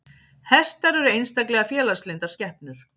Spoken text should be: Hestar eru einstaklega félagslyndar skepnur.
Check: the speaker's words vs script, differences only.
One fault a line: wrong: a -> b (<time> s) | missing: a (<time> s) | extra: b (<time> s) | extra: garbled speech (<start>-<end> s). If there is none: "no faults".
no faults